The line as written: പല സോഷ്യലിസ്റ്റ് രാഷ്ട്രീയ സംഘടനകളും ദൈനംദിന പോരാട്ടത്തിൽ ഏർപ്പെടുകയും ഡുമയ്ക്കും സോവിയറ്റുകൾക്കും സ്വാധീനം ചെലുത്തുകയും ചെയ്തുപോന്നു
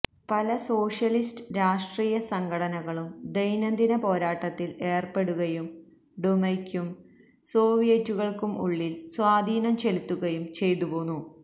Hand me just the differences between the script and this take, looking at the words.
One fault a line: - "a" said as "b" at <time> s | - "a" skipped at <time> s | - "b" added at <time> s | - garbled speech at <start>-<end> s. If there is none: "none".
- "ഉള്ളിൽ" added at 8.6 s